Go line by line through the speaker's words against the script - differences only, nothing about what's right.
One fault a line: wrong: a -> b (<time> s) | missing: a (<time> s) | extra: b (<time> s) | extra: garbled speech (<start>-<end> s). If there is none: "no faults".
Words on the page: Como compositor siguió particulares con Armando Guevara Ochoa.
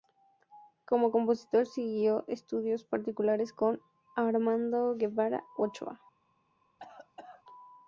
extra: estudios (2.3 s)